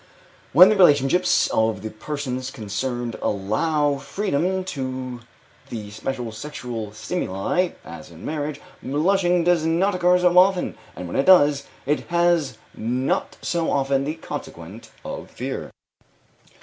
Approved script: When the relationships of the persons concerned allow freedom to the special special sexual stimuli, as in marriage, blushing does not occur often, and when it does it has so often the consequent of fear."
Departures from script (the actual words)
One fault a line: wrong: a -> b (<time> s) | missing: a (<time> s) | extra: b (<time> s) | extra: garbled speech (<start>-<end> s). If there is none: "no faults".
missing: special (6.3 s)
extra: so (10.2 s)
extra: not (12.8 s)